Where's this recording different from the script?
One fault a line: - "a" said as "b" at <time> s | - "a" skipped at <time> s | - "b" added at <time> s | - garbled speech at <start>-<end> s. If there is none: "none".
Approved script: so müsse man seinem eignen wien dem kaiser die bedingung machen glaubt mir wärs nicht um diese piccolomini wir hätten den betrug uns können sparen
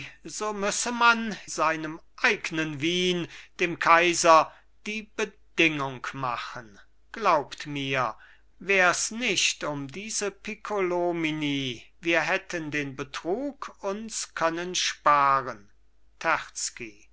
none